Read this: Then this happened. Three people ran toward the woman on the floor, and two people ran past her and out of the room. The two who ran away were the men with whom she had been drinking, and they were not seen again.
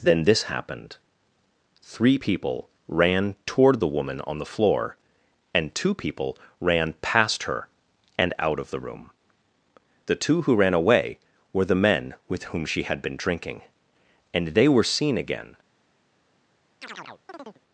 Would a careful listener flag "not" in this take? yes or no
yes